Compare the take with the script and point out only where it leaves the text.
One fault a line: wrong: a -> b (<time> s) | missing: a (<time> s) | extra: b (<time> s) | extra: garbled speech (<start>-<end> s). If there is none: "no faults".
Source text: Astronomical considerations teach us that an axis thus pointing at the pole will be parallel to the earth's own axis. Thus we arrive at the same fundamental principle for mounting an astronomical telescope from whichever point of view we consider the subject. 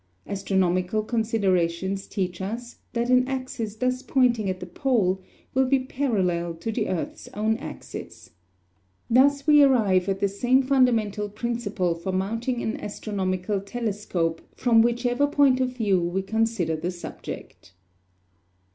no faults